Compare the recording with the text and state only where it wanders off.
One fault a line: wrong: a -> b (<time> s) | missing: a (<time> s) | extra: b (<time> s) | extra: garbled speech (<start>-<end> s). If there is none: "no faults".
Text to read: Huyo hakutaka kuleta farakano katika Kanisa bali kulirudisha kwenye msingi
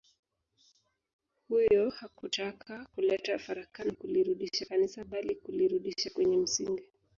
wrong: katika -> kulirudisha (3.9 s)